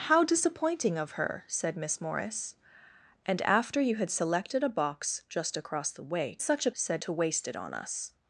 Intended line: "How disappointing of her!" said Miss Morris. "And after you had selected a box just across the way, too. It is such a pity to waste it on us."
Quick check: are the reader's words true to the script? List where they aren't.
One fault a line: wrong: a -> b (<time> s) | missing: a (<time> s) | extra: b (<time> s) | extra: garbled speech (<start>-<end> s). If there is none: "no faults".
missing: too It is (6.4 s)
wrong: pity -> said (6.7 s)